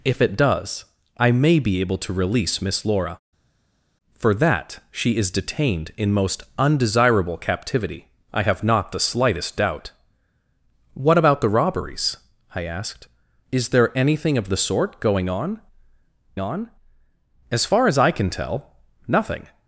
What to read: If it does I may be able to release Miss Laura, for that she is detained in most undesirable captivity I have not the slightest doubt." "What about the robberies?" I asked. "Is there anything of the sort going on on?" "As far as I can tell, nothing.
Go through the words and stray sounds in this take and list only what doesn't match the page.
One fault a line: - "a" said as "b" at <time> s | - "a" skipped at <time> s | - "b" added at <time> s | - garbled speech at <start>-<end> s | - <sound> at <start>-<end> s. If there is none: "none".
none